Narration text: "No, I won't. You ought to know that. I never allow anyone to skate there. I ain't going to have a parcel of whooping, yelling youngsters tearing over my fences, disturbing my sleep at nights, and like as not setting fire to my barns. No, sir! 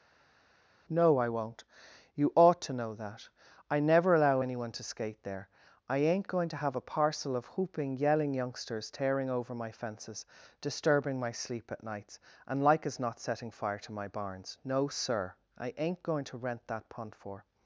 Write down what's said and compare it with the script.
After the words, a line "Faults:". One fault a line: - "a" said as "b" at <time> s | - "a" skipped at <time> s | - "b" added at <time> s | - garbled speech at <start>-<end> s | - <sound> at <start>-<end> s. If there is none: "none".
"No, I won't. You ought to know that. I never allow anyone to skate there. I ain't going to have a parcel of whooping, yelling youngsters tearing over my fences, disturbing my sleep at nights, and like as not setting fire to my barns. No, sir! I ain't going to rent that pond for
Faults:
- "I ain't going to rent that pond for" added at 15.6 s